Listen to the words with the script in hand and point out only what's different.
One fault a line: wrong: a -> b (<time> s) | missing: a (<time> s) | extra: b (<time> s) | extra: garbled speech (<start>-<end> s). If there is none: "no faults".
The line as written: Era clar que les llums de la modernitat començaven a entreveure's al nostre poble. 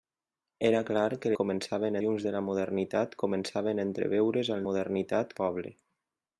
wrong: les -> començaven (1.4 s)
wrong: nostre -> modernitat (4.7 s)